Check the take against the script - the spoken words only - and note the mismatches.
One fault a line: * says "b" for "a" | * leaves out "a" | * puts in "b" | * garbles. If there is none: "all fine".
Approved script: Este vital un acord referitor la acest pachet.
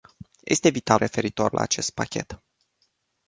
* leaves out "un acord"